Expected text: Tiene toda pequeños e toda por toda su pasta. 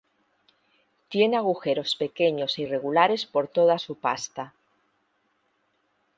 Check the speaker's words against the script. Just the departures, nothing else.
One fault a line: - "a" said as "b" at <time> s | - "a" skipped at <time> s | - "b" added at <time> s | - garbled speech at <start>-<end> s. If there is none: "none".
- "toda" said as "agujeros" at 1.4 s
- "toda" said as "irregulares" at 2.6 s